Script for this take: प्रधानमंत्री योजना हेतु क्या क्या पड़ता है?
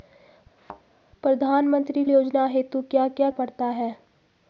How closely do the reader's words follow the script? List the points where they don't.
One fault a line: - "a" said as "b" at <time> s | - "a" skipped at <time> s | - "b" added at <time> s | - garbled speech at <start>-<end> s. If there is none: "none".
none